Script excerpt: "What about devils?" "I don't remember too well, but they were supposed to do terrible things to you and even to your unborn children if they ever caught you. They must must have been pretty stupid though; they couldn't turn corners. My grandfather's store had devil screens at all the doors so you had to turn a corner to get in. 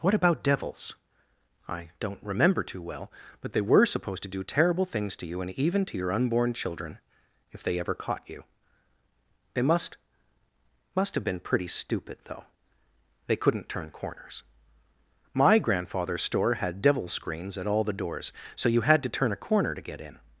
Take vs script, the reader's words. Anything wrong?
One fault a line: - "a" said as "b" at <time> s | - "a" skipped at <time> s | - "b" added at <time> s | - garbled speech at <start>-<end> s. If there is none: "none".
none